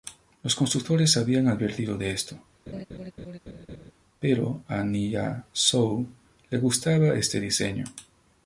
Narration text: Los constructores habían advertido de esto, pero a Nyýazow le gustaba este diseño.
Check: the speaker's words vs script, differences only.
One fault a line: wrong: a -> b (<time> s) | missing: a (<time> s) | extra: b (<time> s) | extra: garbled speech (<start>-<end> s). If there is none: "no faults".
no faults